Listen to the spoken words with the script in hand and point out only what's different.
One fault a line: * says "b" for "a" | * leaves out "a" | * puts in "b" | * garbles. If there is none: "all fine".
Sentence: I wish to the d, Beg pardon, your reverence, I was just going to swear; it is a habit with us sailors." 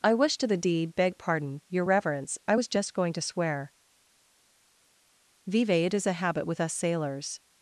* says "deed" for "d"
* puts in "vive"